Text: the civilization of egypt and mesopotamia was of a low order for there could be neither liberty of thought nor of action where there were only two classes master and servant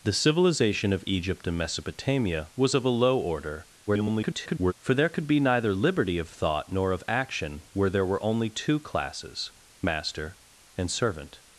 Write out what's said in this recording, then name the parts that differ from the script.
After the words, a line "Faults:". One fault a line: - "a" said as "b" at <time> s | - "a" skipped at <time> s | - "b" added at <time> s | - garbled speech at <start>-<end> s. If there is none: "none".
the civilization of egypt and mesopotamia was of a low order [garbled] for there could be neither liberty of thought nor of action where there were only two classes master and servant
Faults:
- garbled speech at 3.9-4.7 s